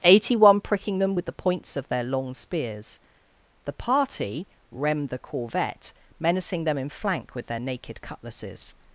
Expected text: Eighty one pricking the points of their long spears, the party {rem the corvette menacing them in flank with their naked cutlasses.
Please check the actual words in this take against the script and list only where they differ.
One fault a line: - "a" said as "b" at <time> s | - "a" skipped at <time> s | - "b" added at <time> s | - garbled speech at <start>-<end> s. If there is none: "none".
- "them with" added at 1.0 s